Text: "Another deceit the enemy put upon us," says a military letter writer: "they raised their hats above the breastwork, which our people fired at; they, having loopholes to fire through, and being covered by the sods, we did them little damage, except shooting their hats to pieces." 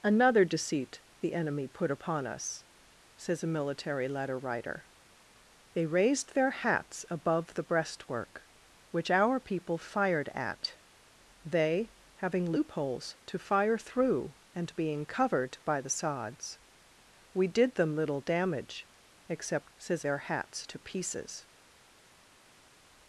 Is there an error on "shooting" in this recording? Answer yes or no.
yes